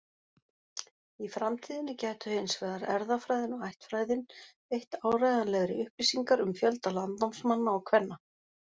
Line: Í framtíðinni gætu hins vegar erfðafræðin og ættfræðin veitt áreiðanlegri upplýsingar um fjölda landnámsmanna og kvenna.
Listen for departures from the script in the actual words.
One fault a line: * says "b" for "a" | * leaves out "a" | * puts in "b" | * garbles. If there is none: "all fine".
all fine